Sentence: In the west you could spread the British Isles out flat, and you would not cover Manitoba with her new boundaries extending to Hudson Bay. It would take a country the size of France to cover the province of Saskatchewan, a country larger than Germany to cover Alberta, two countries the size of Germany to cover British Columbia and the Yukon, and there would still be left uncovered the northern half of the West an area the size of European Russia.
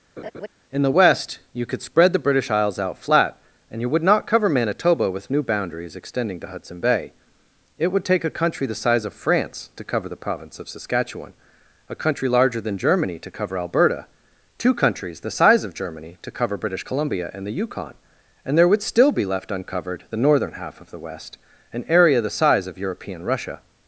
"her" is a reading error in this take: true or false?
true